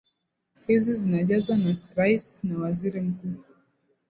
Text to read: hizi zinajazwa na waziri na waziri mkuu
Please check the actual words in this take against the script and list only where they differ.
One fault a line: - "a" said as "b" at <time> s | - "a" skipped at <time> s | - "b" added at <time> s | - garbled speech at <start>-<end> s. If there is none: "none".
- "waziri" said as "rais" at 2.0 s